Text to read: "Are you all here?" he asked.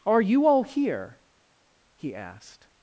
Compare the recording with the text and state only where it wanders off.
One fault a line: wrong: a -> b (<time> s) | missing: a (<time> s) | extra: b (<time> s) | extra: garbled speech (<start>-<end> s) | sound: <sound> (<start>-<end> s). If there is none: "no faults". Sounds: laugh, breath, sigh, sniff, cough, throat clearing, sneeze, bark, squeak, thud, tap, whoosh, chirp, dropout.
no faults